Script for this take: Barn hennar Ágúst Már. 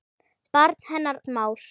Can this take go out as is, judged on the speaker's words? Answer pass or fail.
fail